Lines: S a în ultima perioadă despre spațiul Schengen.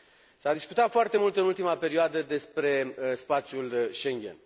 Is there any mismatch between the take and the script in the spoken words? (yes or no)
yes